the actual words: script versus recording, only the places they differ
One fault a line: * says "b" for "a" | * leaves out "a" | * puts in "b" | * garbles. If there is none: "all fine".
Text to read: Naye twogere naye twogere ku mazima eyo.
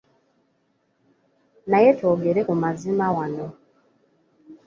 * leaves out "naye twogere"
* says "wano" for "eyo"